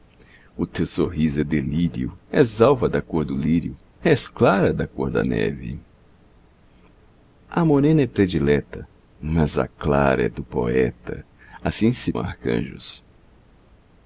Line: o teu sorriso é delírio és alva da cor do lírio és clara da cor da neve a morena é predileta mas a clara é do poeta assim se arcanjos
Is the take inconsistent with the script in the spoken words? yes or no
no